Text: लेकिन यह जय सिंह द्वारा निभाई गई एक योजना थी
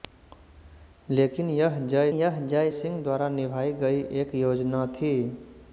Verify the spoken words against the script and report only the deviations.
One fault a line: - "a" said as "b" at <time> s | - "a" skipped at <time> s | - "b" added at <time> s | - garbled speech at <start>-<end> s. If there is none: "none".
- "यह जय" added at 2.1 s